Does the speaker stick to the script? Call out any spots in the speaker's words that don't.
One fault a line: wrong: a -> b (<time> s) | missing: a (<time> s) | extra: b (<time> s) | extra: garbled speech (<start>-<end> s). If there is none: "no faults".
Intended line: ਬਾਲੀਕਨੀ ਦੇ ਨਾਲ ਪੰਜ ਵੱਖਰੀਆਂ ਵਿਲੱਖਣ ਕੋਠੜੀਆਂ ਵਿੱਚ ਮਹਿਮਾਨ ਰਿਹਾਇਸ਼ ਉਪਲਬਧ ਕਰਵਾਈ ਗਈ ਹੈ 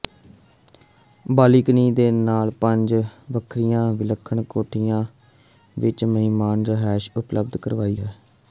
missing: ਗਈ (8.0 s)